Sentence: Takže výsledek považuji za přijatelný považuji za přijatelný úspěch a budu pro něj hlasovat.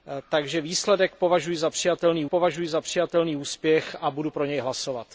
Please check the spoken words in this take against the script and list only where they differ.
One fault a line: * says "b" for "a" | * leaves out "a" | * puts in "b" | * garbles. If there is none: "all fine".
all fine